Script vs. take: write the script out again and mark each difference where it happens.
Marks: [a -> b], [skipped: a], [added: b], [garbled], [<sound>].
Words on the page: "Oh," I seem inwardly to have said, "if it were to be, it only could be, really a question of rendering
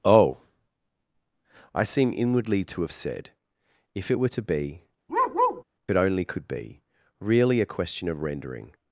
"Oh," I seem inwardly to have said, "if it were to be, [bark] it only could be, really a question of rendering